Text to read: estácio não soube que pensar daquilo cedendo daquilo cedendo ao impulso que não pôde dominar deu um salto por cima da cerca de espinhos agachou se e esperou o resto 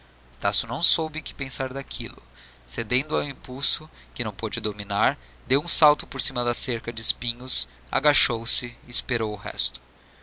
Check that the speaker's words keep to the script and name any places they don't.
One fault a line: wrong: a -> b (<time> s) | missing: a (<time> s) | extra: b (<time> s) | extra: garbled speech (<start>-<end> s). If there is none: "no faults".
missing: daquilo cedendo (3.1 s)